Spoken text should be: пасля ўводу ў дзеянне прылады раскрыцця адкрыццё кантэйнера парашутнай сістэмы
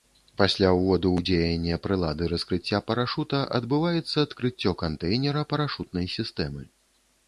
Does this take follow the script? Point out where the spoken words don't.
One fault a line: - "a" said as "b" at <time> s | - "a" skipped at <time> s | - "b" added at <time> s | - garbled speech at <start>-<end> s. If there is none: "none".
- "парашута адбываецца" added at 2.9 s